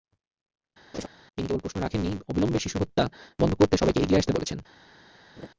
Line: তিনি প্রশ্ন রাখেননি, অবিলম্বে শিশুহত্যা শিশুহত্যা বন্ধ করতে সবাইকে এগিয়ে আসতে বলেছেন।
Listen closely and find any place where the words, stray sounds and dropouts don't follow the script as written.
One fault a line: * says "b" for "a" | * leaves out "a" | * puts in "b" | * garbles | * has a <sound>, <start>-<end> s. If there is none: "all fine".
* has a laugh, 0.9-1.1 s
* puts in "কেবল"
* leaves out "শিশুহত্যা"
* has a laugh, 5.4-5.5 s